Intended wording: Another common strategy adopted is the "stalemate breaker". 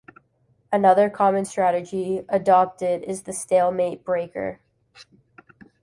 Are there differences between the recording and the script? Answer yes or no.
no